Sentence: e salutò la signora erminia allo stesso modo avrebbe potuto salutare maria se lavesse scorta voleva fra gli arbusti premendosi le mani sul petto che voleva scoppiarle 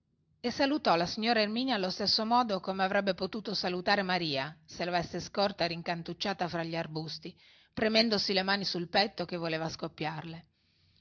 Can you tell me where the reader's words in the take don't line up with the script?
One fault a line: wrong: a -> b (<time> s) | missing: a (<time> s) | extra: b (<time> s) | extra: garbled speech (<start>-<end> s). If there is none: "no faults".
extra: come (2.6 s)
wrong: voleva -> rincantucciata (5.7 s)